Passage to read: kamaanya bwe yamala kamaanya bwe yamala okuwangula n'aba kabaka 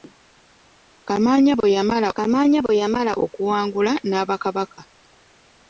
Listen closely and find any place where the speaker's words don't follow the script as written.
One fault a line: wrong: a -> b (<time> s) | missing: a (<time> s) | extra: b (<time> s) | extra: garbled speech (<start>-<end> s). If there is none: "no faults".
no faults